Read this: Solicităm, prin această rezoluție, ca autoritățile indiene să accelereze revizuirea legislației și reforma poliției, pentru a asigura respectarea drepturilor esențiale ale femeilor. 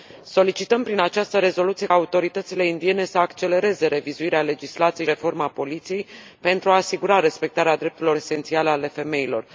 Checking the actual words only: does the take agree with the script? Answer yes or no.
no